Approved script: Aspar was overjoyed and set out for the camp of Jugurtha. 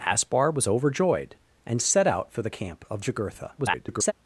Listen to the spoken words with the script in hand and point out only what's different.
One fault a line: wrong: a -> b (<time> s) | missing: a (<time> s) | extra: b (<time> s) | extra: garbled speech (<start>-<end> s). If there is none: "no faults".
extra: garbled speech (3.6-4.1 s)